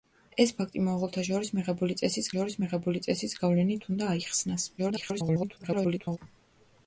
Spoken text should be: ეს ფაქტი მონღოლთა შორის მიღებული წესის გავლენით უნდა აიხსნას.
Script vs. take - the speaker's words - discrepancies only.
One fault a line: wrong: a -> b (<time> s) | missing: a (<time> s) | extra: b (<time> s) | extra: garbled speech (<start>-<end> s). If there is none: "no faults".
extra: შორის მიღებული წესის (2.3 s)
extra: garbled speech (4.8-6.2 s)